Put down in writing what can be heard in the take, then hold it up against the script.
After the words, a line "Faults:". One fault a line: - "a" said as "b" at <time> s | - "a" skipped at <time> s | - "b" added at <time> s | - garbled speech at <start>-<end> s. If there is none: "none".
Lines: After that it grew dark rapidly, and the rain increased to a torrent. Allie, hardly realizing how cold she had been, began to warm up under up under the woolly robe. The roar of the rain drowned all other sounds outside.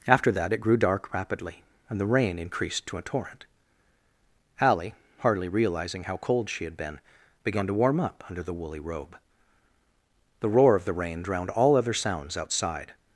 After that it grew dark rapidly, and the rain increased to a torrent. Allie, hardly realizing how cold she had been, began to warm up under the woolly robe. The roar of the rain drowned all other sounds outside.
Faults:
- "up under" skipped at 8.4 s